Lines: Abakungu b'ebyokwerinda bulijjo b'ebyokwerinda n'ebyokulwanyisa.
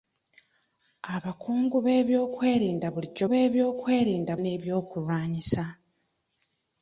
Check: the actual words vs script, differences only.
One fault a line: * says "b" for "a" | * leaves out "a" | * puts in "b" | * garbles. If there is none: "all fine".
all fine